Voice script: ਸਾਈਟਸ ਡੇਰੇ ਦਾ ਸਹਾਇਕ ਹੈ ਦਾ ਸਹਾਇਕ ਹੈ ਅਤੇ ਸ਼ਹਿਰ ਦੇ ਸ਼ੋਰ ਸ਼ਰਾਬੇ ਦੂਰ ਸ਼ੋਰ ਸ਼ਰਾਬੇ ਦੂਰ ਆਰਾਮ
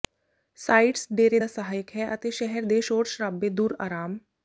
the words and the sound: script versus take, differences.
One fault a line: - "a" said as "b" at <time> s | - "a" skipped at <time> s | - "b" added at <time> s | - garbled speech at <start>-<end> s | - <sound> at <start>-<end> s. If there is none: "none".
- "ਦਾ ਸਹਾਇਕ ਹੈ" skipped at 2.1 s
- "ਸ਼ੋਰ ਸ਼ਰਾਬੇ ਦੂਰ" skipped at 3.7 s